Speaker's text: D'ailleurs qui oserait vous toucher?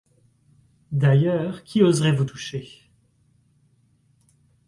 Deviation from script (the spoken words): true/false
false